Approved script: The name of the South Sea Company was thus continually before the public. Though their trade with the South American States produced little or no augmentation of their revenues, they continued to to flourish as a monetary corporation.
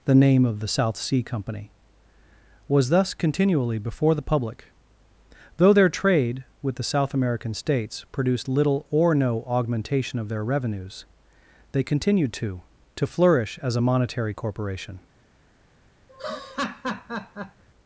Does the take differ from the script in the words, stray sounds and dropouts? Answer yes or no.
yes